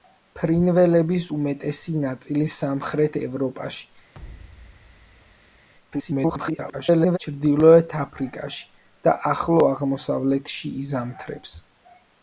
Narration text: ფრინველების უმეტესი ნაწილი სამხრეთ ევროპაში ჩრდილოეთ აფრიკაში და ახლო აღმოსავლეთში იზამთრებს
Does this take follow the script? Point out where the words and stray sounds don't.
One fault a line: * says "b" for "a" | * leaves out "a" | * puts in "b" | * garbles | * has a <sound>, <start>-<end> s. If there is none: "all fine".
* has a thud, 4.1-5.7 s
* garbles